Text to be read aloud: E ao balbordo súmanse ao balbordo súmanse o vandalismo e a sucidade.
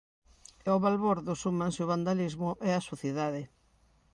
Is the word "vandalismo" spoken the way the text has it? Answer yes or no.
yes